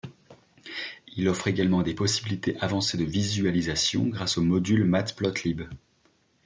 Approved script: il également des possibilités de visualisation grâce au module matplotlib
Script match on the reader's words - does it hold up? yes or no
no